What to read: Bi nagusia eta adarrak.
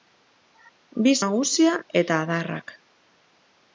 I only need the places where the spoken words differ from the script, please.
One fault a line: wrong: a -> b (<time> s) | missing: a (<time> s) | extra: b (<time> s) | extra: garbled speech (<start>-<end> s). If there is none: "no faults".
no faults